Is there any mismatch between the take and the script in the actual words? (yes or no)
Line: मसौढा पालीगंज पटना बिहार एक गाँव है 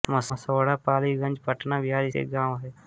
no